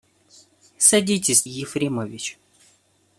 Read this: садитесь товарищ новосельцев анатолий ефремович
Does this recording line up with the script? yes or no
no